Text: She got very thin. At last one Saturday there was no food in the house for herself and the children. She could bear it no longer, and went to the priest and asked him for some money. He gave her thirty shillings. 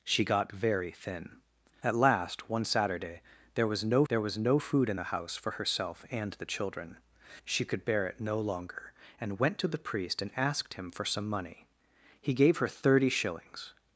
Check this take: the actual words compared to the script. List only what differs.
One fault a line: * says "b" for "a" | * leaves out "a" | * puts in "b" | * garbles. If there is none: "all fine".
* puts in "there was no"